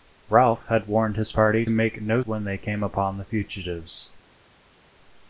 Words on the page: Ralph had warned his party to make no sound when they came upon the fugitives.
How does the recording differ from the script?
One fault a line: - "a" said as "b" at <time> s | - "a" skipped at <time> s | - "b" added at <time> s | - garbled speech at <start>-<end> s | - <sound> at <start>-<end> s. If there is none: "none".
- "to" skipped at 1.7 s
- "sound" skipped at 2.2 s